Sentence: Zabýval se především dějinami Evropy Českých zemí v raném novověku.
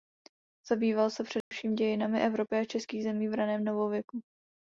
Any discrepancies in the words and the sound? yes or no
yes